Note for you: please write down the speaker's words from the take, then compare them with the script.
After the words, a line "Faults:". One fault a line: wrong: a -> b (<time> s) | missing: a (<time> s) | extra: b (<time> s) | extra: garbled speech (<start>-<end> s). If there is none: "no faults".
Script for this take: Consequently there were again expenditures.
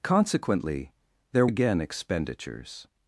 Consequently there again expenditures.
Faults:
missing: were (1.4 s)